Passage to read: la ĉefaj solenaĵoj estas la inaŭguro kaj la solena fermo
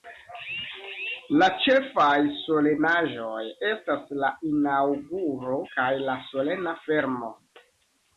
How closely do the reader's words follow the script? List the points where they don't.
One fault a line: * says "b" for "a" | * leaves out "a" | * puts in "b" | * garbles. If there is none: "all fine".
all fine